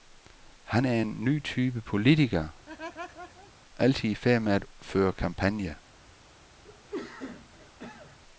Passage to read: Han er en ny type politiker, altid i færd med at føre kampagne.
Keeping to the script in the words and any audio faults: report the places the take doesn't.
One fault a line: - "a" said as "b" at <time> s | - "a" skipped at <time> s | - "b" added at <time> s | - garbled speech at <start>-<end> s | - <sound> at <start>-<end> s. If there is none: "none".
- laugh at 2.7-3.5 s
- cough at 6.6-8.2 s